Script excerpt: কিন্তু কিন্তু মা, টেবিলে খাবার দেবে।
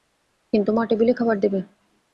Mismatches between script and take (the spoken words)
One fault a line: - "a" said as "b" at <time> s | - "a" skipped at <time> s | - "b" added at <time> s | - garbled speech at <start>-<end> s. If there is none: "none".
- "কিন্তু" skipped at 0.7 s